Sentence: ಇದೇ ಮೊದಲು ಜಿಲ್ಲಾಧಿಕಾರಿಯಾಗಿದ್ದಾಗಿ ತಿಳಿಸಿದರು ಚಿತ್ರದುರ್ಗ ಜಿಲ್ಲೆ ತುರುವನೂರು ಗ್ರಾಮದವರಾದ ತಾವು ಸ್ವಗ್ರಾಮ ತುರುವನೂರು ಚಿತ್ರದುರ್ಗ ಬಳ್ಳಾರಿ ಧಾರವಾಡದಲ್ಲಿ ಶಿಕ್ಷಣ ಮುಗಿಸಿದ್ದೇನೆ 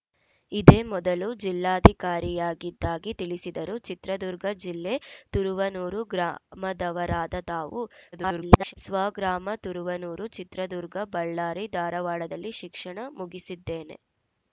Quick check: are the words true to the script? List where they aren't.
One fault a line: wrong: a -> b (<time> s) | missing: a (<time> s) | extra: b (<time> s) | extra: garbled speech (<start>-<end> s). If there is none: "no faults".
extra: garbled speech (8.1-8.7 s)